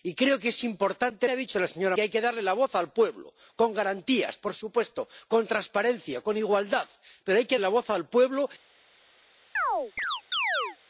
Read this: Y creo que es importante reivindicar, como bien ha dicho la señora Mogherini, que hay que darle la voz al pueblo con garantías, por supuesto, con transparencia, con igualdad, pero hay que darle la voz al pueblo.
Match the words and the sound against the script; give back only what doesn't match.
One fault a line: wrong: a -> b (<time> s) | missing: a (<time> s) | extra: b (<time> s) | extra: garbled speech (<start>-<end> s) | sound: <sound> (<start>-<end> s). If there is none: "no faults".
missing: reivindicar como bien (1.3 s)
missing: Mogherini (2.0 s)
missing: darle (7.6 s)
sound: chirp (9.6-10.8 s)